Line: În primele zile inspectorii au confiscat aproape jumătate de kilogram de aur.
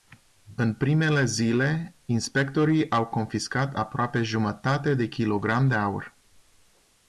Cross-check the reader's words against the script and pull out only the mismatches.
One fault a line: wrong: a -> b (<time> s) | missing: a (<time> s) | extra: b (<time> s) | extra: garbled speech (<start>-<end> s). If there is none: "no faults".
no faults